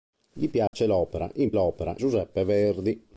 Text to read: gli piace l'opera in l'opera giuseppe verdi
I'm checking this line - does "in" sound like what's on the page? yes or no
yes